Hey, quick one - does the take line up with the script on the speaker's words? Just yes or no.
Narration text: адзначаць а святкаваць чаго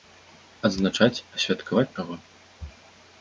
yes